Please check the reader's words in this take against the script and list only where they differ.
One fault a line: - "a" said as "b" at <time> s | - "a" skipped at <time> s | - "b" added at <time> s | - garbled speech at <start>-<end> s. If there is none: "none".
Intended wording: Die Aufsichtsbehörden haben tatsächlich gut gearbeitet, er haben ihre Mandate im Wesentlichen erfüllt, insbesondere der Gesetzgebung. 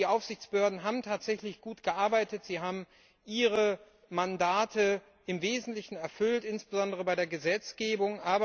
- "er" said as "sie" at 2.4 s
- "bei" added at 7.0 s